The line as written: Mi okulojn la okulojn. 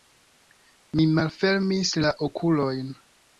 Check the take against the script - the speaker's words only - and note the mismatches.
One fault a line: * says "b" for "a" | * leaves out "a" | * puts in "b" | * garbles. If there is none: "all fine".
* says "malfermis" for "okulojn"